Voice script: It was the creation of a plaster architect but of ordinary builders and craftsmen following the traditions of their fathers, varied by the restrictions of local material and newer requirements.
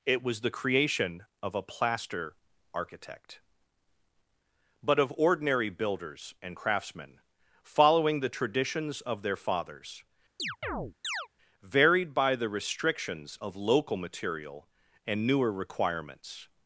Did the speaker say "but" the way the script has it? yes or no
yes